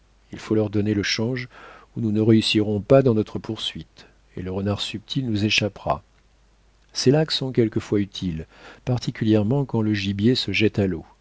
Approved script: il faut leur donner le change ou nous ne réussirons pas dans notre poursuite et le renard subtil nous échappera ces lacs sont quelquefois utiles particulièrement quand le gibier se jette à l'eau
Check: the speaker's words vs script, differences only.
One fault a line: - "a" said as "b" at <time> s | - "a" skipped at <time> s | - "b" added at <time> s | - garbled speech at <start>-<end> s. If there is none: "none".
none